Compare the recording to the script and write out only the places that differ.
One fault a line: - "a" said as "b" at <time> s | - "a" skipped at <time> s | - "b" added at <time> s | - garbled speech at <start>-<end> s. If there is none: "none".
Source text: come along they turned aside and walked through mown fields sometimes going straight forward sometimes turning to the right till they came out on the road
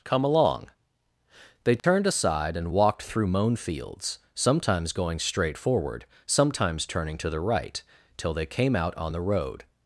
none